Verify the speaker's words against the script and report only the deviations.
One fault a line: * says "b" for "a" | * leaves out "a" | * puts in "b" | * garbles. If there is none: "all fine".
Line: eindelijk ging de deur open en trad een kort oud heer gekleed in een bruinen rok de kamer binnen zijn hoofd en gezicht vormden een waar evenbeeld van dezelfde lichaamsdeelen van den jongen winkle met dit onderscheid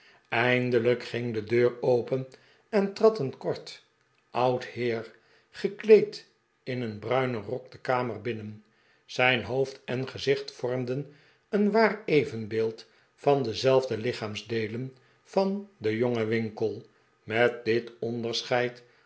all fine